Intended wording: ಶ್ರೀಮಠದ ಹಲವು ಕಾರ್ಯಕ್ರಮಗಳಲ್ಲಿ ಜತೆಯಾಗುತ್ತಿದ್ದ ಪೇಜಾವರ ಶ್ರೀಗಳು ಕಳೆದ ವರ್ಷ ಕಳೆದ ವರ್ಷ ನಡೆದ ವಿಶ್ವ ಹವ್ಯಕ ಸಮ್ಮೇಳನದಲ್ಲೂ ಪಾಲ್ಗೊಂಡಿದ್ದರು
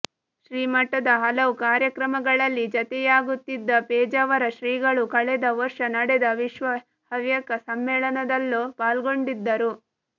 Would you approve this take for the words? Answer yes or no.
no